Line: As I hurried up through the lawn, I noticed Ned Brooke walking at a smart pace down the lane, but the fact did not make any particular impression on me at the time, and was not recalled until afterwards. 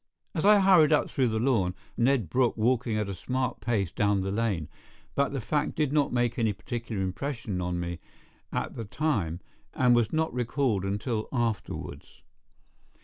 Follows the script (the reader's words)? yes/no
no